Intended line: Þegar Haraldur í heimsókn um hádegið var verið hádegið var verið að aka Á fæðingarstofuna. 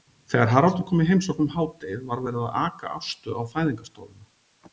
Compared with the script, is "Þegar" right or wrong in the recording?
right